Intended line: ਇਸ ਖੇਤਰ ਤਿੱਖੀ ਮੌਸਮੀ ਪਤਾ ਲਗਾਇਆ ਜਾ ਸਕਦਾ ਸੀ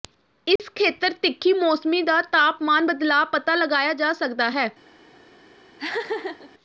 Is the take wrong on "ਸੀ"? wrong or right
wrong